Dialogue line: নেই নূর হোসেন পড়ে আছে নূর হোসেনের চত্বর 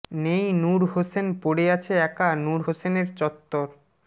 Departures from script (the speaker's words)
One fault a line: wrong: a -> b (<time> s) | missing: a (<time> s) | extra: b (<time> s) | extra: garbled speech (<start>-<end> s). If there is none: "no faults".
extra: একা (2.1 s)